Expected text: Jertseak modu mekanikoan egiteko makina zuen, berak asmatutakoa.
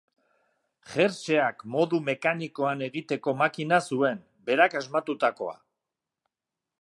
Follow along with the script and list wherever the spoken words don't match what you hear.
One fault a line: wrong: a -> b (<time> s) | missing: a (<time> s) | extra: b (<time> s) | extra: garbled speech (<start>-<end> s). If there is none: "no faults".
no faults